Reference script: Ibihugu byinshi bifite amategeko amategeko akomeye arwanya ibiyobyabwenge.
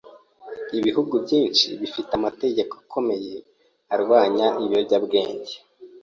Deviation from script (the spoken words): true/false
true